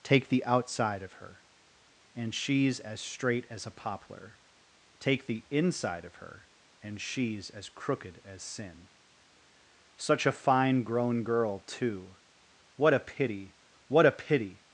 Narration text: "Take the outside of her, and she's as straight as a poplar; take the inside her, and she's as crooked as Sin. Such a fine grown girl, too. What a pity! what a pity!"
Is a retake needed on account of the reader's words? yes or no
yes